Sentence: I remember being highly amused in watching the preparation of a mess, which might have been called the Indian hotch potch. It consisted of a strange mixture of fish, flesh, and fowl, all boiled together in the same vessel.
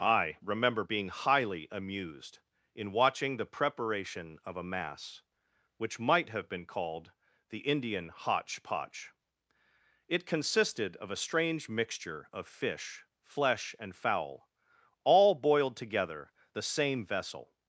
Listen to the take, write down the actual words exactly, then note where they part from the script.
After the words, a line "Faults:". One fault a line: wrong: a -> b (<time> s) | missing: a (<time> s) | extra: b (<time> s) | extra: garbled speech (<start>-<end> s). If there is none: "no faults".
I remember being highly amused in watching the preparation of a mass, which might have been called the Indian hotch potch. It consisted of a strange mixture of fish, flesh, and fowl, all boiled together the same vessel.
Faults:
wrong: mess -> mass (4.6 s)
missing: in (16.3 s)